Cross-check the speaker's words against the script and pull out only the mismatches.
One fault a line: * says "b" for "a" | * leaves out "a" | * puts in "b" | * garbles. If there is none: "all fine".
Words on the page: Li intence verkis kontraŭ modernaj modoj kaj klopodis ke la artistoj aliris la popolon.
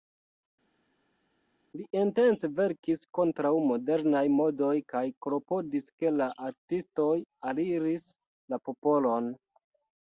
all fine